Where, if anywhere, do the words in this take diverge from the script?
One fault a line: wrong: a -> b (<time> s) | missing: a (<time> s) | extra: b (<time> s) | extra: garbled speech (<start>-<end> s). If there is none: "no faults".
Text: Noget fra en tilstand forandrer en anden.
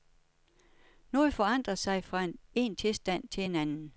extra: forandrer sig (1.3 s)
wrong: forandrer -> til (3.3 s)